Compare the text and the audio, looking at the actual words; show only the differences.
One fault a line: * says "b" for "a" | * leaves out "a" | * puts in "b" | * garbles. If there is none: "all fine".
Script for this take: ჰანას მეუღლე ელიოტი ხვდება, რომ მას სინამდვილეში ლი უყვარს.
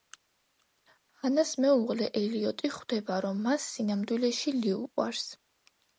all fine